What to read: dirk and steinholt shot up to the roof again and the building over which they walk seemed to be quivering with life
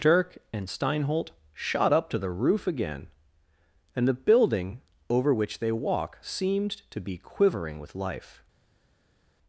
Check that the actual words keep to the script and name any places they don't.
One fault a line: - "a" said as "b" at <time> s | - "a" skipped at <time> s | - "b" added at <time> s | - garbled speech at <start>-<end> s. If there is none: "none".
none